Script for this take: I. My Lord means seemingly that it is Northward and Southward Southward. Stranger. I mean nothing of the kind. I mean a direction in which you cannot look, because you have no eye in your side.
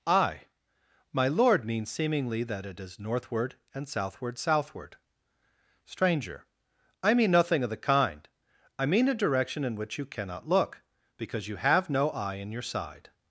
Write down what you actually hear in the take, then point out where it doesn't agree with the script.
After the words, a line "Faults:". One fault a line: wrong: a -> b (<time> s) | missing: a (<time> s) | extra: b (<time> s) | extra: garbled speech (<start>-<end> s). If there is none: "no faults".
I. My Lord means seemingly that it is Northward and Southward Southward. Stranger. I mean nothing of the kind. I mean a direction in which you cannot look, because you have no eye in your side.
Faults:
no faults